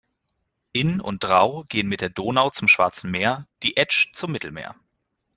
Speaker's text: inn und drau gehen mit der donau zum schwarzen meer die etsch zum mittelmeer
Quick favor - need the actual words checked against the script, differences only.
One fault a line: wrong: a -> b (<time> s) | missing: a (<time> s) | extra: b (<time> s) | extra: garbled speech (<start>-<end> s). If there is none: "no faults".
no faults